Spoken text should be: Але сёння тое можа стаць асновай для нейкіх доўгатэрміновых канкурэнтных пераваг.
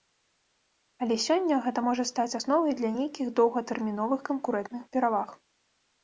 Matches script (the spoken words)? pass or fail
fail